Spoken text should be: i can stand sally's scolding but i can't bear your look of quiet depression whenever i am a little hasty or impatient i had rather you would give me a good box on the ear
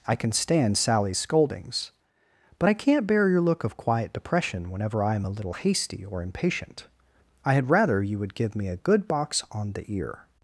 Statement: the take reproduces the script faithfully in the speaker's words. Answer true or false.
false